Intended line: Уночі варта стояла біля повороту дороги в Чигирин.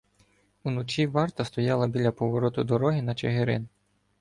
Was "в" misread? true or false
true